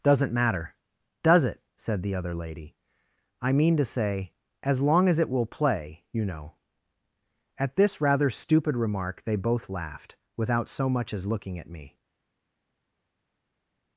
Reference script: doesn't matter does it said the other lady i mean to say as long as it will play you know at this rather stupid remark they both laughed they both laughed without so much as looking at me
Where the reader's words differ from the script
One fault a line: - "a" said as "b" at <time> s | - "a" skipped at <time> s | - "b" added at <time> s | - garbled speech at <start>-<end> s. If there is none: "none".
- "they both laughed" skipped at 10.2 s